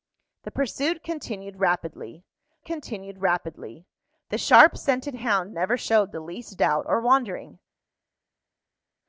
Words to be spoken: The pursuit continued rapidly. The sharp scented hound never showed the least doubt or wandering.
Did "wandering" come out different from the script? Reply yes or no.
no